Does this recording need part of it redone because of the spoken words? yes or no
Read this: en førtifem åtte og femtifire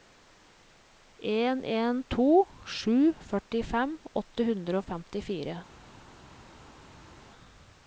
yes